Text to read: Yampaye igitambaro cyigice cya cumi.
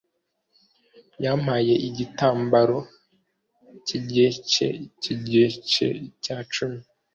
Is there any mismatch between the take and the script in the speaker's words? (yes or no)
yes